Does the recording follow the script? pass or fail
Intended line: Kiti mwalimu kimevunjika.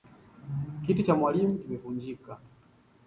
fail